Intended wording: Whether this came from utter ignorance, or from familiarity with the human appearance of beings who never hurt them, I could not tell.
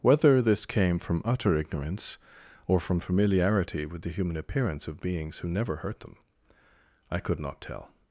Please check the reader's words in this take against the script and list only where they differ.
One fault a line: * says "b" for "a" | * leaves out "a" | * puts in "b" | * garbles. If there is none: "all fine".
all fine